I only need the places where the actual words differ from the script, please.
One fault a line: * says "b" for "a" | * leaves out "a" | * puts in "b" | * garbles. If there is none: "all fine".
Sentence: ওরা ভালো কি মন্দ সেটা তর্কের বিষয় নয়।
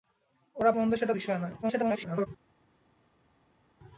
* leaves out "ভালো কি"
* leaves out "তর্কের"
* garbles